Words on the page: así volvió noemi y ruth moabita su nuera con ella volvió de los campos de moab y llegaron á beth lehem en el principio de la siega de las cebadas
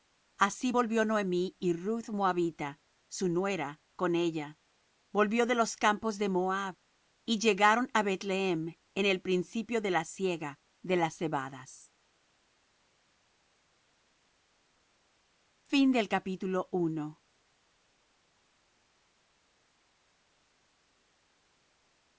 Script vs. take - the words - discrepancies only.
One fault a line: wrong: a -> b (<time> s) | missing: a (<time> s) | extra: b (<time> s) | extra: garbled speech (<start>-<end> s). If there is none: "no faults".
no faults